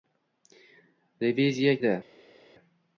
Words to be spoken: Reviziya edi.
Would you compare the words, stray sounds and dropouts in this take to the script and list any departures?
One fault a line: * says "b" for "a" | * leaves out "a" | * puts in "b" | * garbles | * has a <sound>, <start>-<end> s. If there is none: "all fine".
all fine